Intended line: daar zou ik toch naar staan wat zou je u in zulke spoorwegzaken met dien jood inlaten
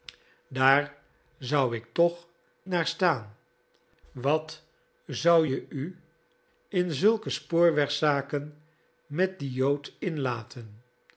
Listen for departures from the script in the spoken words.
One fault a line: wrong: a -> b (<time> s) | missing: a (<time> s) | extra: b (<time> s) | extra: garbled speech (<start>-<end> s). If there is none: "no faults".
no faults